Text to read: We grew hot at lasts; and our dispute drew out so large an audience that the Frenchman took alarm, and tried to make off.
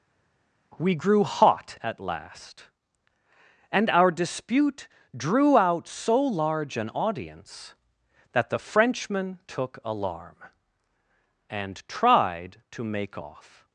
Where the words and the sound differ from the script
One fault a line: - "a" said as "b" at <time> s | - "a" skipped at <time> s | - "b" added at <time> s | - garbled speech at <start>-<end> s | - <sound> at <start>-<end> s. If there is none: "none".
- "lasts" said as "last" at 2.0 s